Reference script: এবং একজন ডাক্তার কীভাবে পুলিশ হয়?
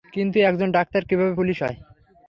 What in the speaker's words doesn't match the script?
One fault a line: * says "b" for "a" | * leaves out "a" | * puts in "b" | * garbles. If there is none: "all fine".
* says "কিন্তু" for "এবং"